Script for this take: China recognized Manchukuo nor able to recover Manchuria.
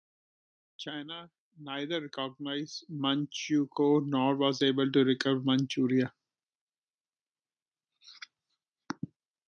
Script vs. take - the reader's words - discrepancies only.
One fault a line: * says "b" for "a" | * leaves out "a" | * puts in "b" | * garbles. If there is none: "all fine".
* puts in "neither"
* puts in "was"